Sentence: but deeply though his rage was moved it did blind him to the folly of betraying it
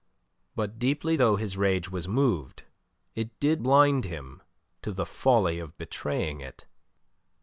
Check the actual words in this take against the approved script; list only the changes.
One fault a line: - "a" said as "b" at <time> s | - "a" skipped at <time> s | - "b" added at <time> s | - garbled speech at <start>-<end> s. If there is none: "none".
none